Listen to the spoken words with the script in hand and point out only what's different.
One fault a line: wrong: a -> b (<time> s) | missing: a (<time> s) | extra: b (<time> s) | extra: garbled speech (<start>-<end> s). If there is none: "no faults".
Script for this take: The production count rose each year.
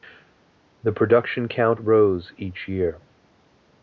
no faults